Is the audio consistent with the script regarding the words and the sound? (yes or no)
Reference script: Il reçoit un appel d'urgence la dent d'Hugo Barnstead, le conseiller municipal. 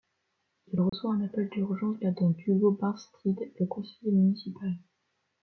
no